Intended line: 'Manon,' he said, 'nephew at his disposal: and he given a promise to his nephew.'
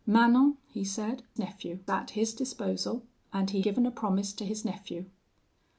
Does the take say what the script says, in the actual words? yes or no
yes